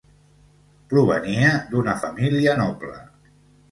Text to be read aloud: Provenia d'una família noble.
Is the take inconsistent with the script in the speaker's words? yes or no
no